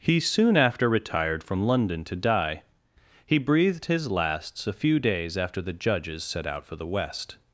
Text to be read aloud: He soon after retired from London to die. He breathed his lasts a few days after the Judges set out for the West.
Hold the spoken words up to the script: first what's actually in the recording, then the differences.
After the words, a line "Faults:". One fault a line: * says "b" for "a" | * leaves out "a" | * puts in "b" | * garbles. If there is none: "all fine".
He soon after retired from London to die. He breathed his lasts a few days after the Judges set out for the West.
Faults:
all fine